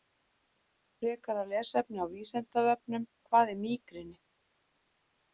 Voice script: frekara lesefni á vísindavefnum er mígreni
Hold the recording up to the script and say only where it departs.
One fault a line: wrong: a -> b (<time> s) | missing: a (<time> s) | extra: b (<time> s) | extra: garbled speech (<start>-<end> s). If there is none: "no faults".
extra: hvað (3.3 s)